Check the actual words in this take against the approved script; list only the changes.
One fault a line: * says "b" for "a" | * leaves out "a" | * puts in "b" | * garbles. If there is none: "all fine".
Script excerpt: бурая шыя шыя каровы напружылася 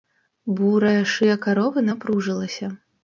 * leaves out "шыя"